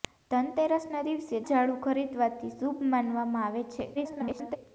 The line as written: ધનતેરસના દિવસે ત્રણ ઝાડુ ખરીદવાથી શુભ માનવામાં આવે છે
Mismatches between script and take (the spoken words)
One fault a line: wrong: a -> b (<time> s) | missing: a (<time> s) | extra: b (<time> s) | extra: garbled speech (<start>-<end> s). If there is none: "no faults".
missing: ત્રણ (1.4 s)
extra: garbled speech (3.9-4.6 s)